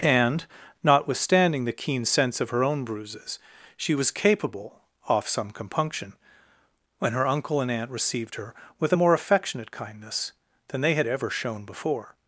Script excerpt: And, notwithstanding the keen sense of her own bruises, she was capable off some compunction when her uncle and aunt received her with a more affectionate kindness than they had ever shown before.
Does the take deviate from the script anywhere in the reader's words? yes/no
no